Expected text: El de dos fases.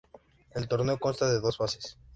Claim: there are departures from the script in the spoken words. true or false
true